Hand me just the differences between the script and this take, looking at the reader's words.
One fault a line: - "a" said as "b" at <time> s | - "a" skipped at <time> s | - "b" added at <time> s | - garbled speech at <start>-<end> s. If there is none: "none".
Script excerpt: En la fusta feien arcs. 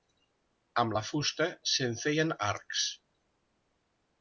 - "En" said as "Amb" at 0.8 s
- "se'n" added at 1.7 s